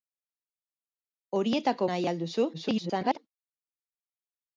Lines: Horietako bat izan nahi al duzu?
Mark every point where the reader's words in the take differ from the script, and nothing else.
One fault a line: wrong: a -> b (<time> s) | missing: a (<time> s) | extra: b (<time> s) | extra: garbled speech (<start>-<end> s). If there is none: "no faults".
missing: bat izan (1.9 s)
extra: garbled speech (2.5-3.2 s)